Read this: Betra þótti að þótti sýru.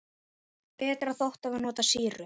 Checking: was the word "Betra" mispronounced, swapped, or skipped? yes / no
no